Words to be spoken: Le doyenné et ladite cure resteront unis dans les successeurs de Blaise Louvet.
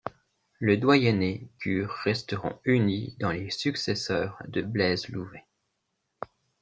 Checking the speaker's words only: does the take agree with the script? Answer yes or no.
no